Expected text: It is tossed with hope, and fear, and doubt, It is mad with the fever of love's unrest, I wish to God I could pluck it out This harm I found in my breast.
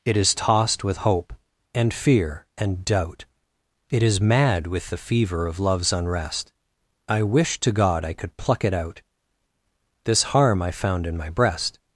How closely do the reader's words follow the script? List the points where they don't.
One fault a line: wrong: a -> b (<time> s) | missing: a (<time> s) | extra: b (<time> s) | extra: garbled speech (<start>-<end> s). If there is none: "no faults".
no faults